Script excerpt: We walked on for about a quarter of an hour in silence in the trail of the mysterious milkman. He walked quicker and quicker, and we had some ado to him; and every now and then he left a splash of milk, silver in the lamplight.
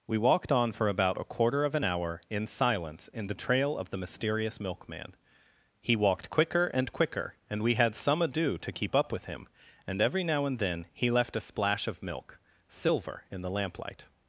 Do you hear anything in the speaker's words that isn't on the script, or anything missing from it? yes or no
yes